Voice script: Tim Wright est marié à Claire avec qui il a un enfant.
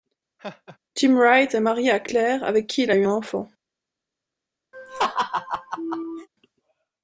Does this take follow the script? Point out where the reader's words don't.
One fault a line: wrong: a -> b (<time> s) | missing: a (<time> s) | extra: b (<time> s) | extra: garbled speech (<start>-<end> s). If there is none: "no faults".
extra: eu (2.9 s)